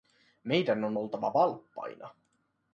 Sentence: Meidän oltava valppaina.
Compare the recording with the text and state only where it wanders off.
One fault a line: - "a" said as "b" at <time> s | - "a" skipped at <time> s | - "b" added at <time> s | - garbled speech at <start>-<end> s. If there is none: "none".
- "on" added at 0.8 s